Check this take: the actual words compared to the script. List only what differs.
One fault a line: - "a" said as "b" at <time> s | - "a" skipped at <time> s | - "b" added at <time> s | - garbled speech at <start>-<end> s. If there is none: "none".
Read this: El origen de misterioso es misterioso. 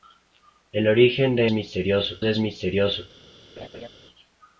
none